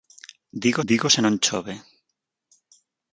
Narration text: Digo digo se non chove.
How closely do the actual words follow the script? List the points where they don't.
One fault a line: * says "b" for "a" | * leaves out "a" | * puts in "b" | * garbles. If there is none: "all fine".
all fine